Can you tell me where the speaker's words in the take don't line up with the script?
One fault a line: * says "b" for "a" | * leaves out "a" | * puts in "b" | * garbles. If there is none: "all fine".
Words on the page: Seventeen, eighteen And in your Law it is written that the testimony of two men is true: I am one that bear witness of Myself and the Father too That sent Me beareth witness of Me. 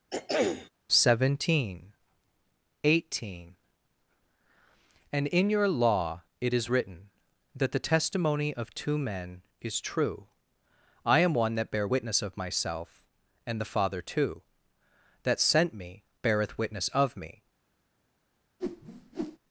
all fine